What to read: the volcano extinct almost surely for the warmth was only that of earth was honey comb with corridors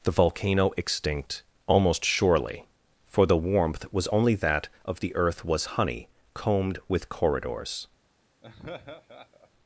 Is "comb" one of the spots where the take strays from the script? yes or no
yes